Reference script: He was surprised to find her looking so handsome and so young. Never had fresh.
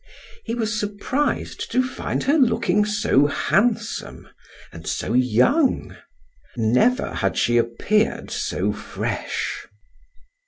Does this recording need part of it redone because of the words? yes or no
yes